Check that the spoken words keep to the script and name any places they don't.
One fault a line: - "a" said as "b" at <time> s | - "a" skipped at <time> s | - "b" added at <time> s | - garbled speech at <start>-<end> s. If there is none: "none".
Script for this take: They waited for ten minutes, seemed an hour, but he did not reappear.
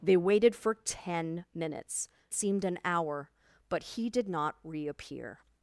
none